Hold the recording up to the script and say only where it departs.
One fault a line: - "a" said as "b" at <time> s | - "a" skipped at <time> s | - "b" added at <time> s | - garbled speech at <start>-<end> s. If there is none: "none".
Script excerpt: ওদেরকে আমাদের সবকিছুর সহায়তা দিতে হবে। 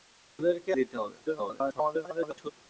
- "আমাদের সবকিছুর সহায়তা" skipped at 0.7 s
- garbled speech at 1.3-2.5 s